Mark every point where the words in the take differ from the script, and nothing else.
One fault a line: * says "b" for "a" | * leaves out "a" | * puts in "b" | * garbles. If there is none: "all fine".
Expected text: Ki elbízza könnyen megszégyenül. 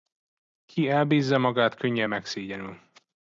* puts in "magát"